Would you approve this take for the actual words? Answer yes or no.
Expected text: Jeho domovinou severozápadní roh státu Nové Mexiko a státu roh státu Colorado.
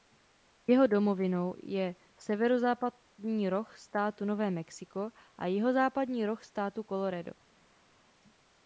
no